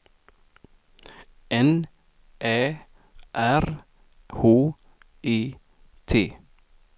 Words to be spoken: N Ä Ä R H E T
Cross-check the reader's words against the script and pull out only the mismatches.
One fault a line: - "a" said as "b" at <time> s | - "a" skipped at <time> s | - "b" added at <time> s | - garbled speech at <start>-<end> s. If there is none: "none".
- "Ä" skipped at 2.6 s